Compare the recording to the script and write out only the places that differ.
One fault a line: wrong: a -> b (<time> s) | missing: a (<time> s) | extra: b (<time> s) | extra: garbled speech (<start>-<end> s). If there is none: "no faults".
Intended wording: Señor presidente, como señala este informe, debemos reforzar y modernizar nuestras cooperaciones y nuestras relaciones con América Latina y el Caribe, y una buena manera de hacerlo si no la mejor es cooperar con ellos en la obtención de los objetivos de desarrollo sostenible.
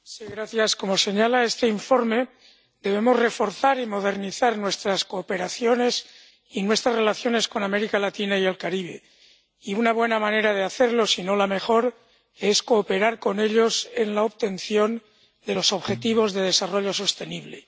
no faults